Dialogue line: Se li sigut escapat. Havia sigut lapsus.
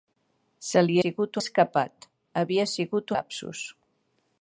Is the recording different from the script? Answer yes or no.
no